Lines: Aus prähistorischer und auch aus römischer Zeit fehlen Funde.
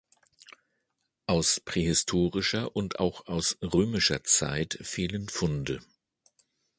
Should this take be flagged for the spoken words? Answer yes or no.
no